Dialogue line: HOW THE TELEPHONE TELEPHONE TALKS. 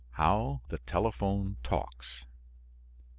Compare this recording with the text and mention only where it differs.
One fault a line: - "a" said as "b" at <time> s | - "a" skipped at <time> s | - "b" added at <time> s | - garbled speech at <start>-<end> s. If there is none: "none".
- "TELEPHONE" skipped at 1.6 s